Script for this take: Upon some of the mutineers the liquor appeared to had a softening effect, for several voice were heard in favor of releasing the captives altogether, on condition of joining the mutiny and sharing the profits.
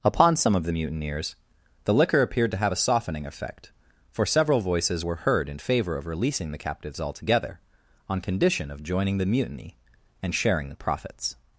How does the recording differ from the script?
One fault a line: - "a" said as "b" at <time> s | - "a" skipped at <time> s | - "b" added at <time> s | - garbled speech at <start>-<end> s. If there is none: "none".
- "had" said as "have" at 2.6 s
- "voice" said as "voices" at 4.6 s